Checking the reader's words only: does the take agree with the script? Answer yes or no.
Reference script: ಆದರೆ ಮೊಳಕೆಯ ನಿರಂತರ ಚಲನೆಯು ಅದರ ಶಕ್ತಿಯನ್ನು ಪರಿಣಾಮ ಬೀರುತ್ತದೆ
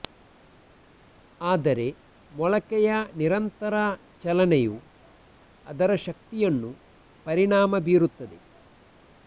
yes